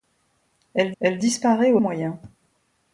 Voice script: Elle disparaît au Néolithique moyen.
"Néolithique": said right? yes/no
no